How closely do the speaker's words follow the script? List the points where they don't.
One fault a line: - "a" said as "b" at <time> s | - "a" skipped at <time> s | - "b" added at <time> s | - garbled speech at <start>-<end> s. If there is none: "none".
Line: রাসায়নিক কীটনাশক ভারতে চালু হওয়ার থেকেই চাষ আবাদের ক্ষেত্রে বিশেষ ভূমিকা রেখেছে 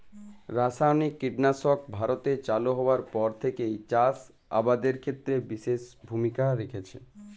- "পর" added at 3.1 s